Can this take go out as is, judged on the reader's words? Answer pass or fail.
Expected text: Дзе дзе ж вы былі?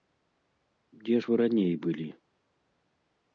fail